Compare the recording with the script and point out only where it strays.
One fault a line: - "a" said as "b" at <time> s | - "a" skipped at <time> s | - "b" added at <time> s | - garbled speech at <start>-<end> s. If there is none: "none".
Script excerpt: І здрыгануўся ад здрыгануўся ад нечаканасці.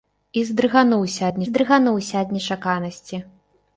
none